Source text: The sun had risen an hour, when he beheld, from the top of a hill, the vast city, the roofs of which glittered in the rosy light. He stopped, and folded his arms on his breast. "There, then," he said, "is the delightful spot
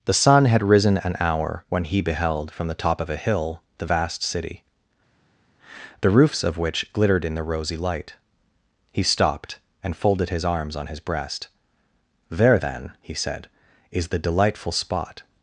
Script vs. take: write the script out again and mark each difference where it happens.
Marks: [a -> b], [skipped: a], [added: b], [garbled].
The sun had risen an hour, when he beheld, from the top of a hill, the vast city, the roofs of which glittered in the rosy light. He stopped, and folded his arms on his breast. "There, then," he said, "is the delightful spot